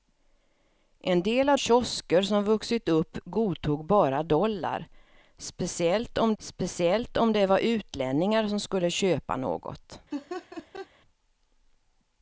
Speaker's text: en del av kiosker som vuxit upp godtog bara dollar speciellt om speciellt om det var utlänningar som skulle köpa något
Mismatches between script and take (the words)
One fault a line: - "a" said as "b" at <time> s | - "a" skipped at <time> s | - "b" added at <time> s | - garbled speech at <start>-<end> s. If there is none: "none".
none